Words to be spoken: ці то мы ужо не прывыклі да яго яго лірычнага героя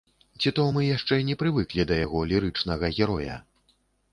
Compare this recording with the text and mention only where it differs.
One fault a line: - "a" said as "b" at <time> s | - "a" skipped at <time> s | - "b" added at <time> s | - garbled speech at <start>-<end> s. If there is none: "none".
- "ужо" said as "яшчэ" at 1.0 s
- "яго" skipped at 2.2 s